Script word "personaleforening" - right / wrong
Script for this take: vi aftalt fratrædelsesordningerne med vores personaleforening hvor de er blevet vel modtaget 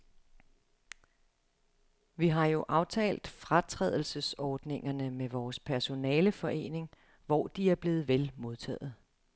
right